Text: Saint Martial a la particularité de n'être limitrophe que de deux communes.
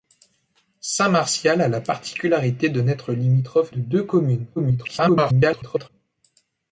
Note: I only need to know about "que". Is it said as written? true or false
false